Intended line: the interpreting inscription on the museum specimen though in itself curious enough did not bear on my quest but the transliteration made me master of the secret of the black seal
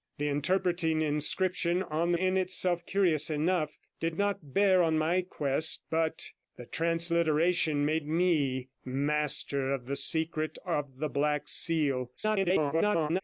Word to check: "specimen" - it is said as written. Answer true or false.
false